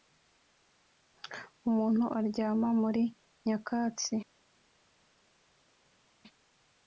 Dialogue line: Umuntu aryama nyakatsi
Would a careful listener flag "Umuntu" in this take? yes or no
no